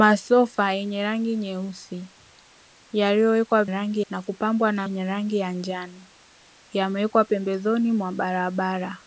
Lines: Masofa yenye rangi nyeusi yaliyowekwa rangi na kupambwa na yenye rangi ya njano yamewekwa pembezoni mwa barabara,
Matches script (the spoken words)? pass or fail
pass